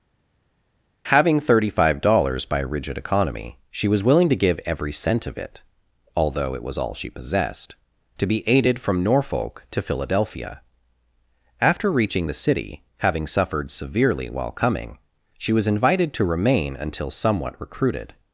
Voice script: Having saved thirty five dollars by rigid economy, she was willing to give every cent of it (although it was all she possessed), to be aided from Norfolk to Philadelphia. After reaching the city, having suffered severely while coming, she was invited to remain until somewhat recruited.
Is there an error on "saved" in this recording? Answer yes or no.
yes